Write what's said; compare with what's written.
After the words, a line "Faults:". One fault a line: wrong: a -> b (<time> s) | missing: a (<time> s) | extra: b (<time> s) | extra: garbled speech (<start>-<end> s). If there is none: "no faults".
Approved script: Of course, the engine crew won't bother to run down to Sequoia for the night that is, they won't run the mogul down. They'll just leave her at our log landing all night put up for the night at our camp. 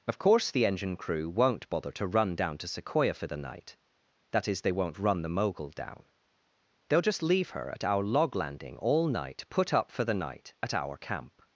Of course, the engine crew won't bother to run down to Sequoia for the night that is, they won't run the mogul down. They'll just leave her at our log landing all night put up for the night at our camp.
Faults:
no faults